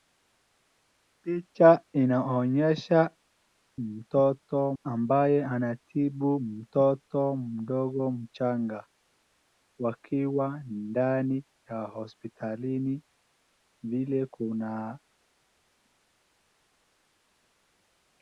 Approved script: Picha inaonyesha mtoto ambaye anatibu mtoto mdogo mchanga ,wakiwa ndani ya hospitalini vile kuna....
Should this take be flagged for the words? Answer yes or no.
no